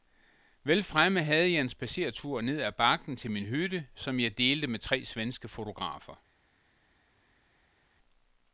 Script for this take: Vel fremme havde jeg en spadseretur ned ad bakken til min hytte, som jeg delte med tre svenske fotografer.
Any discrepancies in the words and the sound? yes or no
no